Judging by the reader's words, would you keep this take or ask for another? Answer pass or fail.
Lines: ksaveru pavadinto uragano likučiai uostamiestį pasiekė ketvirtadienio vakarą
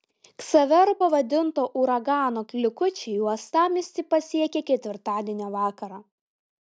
pass